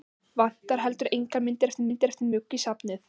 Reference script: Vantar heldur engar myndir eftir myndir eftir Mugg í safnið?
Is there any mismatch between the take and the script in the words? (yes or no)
no